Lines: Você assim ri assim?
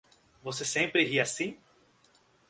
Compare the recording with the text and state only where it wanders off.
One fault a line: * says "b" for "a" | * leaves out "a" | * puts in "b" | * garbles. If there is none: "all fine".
* says "sempre" for "assim"